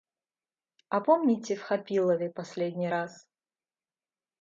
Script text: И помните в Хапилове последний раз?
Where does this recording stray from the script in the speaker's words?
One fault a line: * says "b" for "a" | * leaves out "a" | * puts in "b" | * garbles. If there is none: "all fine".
* says "А" for "И"